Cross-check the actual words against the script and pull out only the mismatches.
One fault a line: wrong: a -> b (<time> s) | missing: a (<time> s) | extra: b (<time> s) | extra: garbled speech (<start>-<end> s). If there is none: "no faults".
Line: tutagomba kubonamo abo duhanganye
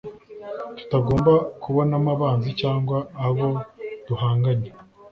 extra: abanzi cyangwa (2.1 s)